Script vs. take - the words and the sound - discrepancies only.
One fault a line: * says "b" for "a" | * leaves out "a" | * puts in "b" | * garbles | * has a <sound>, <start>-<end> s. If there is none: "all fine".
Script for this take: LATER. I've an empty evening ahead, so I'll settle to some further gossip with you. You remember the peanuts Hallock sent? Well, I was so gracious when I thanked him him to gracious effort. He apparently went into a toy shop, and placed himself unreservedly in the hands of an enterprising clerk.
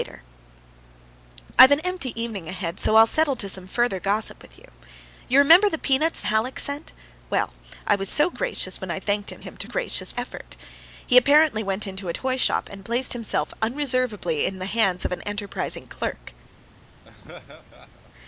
* has a laugh, 17.0-18.1 s